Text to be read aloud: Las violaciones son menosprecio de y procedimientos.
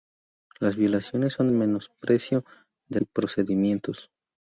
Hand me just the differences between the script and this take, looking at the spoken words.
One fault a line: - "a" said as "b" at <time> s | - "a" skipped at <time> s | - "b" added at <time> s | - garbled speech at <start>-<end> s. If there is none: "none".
none